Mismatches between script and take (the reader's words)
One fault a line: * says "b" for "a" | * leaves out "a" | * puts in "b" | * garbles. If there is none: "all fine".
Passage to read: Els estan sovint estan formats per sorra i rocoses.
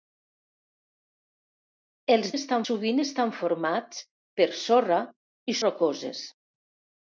all fine